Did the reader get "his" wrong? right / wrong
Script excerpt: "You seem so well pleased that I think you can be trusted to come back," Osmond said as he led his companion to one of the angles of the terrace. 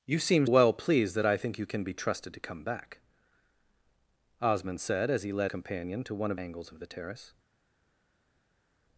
wrong